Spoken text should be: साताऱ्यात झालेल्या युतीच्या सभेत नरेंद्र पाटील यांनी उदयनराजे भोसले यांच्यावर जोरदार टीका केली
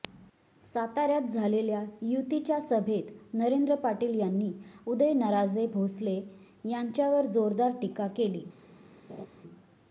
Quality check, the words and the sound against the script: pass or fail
fail